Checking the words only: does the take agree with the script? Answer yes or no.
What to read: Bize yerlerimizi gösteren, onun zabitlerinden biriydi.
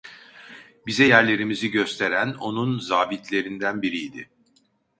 yes